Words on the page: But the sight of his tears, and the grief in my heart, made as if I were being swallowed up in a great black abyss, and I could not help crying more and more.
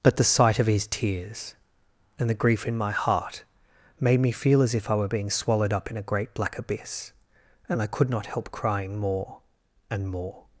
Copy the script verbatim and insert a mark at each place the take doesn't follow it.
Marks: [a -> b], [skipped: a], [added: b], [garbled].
But the sight of his tears, and the grief in my heart, made [added: me feel] as if I were being swallowed up in a great black abyss, and I could not help crying more and more.